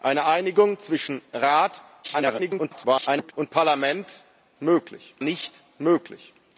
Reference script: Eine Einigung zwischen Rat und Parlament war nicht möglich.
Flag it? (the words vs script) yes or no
yes